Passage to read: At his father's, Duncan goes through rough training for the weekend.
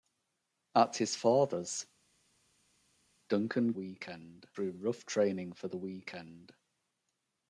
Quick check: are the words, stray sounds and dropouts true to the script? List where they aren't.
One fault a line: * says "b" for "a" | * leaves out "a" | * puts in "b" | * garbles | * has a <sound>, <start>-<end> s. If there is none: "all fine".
* says "weekend" for "goes"